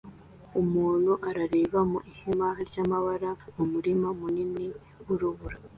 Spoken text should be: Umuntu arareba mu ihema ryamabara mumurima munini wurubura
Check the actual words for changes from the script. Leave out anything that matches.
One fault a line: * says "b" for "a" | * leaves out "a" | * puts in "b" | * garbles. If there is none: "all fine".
all fine